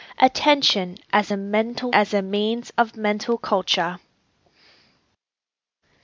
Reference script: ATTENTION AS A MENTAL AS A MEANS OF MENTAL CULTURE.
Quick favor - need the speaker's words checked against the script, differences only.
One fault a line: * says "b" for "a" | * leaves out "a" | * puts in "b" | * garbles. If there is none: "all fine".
all fine